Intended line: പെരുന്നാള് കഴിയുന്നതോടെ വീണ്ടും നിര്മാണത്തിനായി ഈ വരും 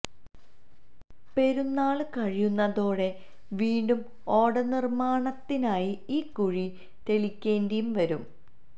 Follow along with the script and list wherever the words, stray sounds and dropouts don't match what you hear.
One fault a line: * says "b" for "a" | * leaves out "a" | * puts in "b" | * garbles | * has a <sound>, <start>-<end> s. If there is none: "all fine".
* puts in "ഓട"
* puts in "കുഴി തെളിക്കേണ്ടിയും"